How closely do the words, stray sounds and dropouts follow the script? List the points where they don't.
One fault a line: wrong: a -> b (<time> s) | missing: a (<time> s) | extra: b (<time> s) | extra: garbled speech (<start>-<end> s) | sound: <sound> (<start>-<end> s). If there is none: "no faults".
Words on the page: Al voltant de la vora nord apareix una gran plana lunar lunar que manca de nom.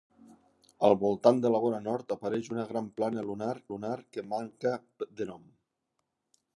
no faults